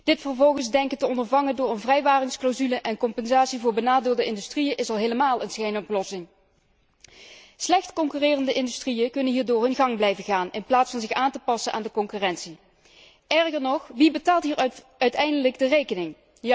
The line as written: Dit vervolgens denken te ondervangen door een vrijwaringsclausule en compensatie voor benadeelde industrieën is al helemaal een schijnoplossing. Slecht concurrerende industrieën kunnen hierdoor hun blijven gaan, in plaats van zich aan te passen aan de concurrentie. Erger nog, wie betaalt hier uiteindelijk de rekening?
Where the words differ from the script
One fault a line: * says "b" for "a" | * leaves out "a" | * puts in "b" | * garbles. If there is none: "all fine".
* puts in "gang"